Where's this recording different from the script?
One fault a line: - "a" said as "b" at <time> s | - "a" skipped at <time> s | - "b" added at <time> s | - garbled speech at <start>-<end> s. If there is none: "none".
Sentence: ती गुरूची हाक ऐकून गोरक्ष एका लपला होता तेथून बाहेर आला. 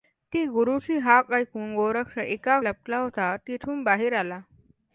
none